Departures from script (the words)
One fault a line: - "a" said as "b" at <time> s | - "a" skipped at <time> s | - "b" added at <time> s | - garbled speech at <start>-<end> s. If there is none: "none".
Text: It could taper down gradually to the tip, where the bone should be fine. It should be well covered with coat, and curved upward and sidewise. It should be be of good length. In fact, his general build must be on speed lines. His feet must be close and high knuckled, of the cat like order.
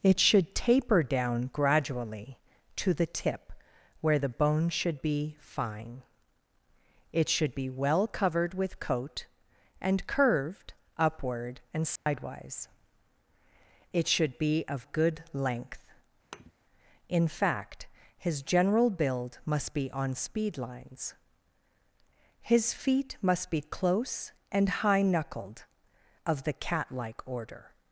- "could" said as "should" at 0.2 s
- "be" skipped at 14.6 s